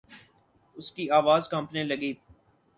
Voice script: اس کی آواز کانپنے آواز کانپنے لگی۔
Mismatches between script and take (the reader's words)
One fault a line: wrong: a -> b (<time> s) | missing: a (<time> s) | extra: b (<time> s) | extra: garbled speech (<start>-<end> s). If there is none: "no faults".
missing: آواز کانپنے (1.8 s)